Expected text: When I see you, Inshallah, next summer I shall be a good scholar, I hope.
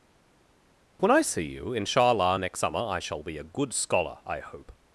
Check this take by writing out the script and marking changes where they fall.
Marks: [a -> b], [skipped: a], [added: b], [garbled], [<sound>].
When I see you, Inshallah, next summer I shall be a good scholar, I hope.